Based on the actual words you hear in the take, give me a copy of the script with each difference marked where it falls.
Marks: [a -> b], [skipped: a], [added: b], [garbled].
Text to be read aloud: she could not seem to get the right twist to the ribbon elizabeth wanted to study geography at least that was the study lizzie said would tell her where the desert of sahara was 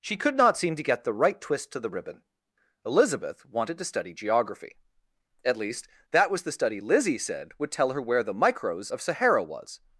she could not seem to get the right twist to the ribbon elizabeth wanted to study geography at least that was the study lizzie said would tell her where the [desert -> micros] of sahara was